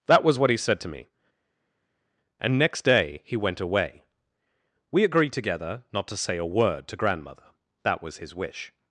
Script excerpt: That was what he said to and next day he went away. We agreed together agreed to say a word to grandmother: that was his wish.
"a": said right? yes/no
yes